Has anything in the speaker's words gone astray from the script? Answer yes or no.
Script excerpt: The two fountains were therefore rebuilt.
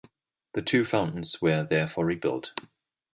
no